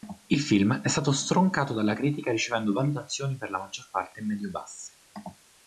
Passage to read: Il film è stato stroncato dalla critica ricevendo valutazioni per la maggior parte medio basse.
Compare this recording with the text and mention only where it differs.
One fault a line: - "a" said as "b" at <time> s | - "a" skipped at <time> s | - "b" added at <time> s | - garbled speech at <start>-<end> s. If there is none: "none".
none